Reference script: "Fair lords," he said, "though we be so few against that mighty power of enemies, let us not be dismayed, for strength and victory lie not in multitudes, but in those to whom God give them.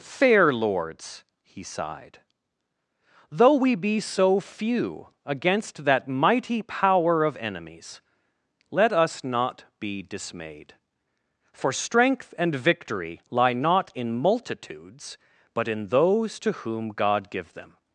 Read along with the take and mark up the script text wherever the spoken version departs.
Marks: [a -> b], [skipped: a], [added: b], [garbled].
"Fair lords," he [said, -> sighed] "though we be so few against that mighty power of enemies, let us not be dismayed, for strength and victory lie not in multitudes, but in those to whom God give them.